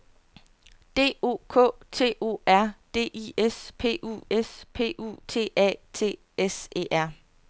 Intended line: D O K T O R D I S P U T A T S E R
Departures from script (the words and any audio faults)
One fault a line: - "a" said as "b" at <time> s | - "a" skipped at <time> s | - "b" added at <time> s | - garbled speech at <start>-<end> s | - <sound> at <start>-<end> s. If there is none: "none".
- "S P U" added at 4.3 s